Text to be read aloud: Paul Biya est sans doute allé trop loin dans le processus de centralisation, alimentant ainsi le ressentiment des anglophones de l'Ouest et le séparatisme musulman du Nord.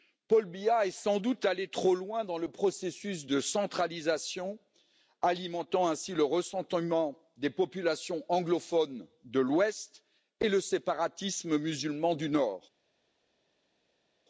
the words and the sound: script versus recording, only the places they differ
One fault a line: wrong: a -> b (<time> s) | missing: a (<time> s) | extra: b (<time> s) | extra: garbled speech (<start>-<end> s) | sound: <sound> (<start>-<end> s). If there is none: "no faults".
extra: populations (7.5 s)